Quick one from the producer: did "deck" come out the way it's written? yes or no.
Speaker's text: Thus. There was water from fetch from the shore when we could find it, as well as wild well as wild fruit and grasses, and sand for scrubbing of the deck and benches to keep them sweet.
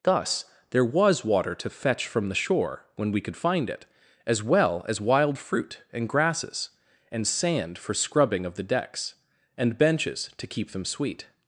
no